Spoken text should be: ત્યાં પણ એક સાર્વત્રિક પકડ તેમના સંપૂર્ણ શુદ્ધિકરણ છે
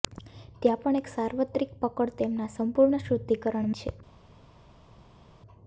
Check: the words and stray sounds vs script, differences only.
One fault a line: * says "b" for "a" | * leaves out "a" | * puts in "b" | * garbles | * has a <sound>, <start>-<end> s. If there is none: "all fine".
all fine